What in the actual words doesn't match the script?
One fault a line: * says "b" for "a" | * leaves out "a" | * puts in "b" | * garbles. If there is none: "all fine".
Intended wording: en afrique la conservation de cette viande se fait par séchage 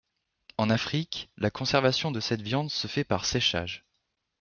all fine